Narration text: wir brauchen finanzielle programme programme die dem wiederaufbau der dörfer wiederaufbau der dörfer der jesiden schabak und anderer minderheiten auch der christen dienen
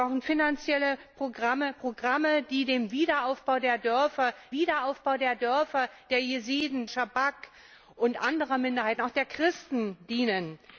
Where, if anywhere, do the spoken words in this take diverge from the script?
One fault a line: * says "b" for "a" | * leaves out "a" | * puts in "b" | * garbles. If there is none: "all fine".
all fine